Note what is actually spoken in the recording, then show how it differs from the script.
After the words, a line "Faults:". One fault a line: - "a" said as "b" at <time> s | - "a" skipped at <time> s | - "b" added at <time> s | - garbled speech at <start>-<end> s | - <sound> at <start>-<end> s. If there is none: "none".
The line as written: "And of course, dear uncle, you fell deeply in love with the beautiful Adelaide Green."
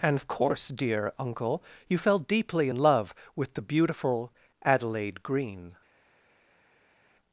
"And of course, dear uncle, you fell deeply in love with the beautiful Adelaide Green."
Faults:
none